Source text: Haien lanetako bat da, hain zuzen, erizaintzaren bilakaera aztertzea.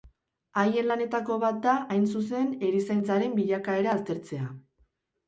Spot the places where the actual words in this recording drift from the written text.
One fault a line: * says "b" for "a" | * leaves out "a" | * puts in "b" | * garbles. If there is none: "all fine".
all fine